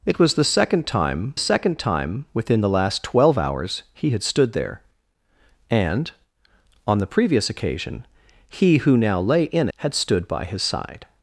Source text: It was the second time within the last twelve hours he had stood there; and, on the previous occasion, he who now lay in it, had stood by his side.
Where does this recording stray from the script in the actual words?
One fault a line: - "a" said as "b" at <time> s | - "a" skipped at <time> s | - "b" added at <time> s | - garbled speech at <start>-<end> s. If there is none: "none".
- "second time" added at 1.4 s
- "it" skipped at 9.7 s